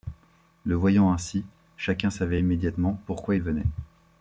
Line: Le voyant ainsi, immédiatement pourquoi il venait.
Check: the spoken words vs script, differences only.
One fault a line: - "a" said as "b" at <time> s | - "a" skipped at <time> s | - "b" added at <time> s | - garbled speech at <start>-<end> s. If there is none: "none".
- "chacun savait" added at 1.8 s